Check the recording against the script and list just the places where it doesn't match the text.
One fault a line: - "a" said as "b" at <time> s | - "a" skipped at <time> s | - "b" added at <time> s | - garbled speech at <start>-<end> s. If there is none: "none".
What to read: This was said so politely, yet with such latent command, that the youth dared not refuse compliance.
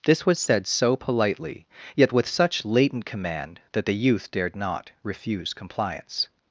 none